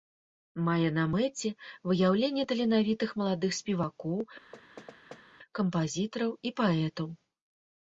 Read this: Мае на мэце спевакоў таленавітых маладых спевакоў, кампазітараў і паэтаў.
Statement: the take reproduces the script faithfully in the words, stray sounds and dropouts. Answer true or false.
false